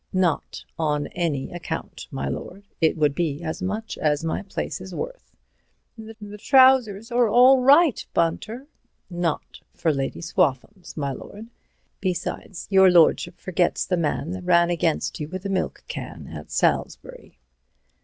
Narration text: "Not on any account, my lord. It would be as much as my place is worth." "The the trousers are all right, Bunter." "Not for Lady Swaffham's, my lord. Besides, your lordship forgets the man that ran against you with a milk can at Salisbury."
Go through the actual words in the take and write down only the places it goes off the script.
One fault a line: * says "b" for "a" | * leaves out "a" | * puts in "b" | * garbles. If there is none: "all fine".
all fine